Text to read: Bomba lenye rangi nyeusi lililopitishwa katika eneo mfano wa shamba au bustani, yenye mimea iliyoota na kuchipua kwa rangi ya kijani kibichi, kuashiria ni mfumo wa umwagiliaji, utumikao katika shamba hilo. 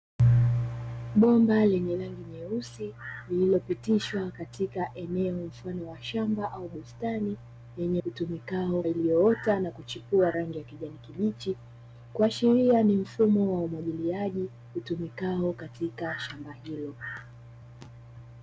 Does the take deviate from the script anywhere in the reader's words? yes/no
yes